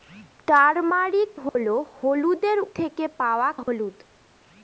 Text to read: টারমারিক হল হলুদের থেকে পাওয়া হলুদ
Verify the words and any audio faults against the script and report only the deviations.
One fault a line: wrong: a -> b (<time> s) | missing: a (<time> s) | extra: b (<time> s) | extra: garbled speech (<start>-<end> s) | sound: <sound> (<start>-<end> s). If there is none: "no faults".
sound: dropout (1.5-1.6 s)
sound: dropout (3.6-3.7 s)